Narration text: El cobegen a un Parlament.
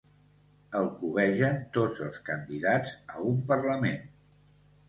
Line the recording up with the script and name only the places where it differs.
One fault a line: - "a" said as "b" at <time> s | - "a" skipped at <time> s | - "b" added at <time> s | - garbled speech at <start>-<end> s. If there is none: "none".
- "tots els candidats" added at 1.8 s